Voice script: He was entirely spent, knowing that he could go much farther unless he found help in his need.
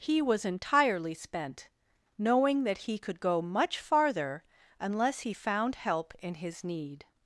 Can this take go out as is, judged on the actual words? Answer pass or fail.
pass